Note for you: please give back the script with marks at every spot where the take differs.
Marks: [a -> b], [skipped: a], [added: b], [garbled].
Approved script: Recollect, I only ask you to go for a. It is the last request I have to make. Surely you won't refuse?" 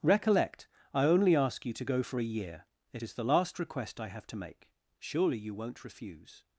Recollect, I only ask you to go for a. [added: year] It is the last request I have to make. Surely you won't refuse?"